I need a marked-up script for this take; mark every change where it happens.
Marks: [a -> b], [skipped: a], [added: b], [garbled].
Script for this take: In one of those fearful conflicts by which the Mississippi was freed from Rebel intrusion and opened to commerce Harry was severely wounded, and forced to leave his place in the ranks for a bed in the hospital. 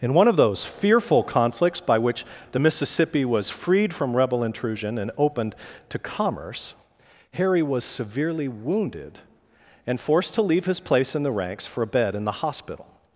In one of those fearful conflicts by which the Mississippi was freed from Rebel intrusion and opened to commerce Harry was severely wounded, and forced to leave his place in the ranks for a bed in the hospital.